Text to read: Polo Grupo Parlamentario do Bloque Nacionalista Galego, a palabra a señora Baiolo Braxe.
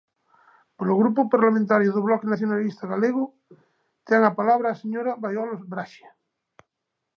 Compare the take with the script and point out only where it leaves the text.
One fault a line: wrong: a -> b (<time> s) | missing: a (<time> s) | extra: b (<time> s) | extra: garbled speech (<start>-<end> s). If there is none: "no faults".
extra: ten (4.1 s)